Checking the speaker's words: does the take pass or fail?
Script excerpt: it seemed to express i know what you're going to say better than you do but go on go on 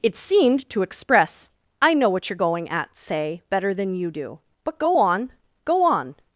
fail